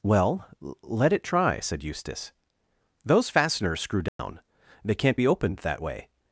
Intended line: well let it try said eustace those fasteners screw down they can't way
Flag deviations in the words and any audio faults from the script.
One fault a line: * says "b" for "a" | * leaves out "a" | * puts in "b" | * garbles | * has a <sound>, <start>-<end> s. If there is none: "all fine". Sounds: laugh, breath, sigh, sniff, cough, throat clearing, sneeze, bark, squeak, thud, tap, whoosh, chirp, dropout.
* has a dropout, 4.1-4.2 s
* puts in "be opened that"